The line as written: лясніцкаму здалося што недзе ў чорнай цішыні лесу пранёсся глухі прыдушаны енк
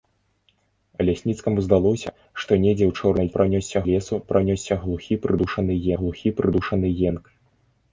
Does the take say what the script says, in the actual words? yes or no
no